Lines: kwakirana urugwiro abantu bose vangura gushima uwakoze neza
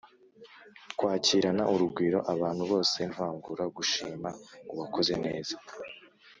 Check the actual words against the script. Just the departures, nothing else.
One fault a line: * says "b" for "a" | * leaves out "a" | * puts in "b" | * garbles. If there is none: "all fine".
all fine